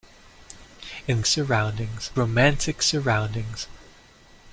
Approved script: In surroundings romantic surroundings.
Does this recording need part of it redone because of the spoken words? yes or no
no